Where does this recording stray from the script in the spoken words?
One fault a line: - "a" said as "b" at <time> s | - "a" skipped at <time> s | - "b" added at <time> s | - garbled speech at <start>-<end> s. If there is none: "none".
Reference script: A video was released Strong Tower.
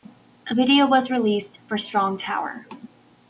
- "for" added at 1.7 s